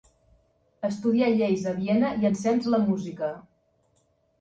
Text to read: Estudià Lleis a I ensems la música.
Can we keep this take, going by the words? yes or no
no